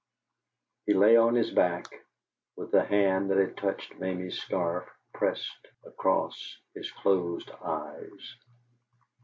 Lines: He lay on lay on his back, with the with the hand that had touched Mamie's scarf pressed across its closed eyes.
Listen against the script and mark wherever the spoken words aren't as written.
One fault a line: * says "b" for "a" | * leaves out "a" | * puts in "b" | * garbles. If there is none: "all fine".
* leaves out "lay on"
* leaves out "with the"
* says "his" for "its"